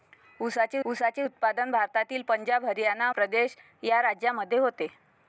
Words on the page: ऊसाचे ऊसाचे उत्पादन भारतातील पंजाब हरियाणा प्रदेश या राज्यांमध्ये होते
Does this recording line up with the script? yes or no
yes